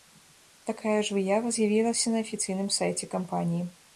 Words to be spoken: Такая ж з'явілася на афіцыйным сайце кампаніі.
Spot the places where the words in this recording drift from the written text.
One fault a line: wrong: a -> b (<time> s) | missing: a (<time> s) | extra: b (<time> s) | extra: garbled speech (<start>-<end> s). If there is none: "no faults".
extra: выява (1.2 s)